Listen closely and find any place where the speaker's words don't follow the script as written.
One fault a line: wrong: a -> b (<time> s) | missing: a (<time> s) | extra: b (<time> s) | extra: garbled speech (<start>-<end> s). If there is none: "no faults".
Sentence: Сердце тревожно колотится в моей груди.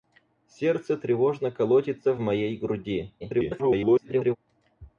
extra: garbled speech (3.2-4.4 s)